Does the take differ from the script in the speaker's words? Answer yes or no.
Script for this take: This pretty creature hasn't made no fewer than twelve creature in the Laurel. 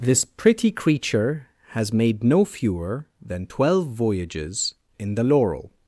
yes